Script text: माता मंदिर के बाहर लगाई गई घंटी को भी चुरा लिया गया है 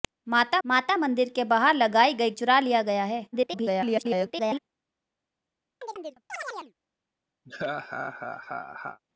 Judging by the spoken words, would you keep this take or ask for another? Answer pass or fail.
fail